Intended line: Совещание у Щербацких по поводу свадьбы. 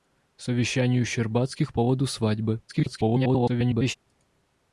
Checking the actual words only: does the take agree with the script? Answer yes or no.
no